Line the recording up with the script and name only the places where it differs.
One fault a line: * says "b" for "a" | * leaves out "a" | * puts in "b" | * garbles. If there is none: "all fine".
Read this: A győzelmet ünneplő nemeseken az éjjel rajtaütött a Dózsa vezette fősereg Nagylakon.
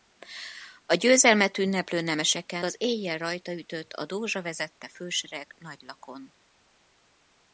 all fine